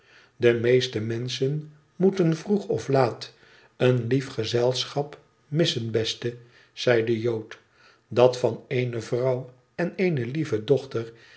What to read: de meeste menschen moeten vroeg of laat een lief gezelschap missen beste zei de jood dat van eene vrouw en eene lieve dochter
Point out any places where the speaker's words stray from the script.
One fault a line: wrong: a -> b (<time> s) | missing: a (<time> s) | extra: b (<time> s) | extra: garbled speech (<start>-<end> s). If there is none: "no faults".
no faults